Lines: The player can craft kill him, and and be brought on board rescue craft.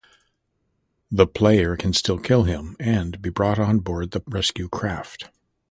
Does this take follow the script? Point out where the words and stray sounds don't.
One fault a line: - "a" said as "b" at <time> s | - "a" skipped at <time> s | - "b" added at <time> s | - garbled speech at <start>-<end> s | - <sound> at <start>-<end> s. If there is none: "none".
- "craft" said as "still" at 1.9 s
- "and" skipped at 3.2 s
- "the" added at 4.1 s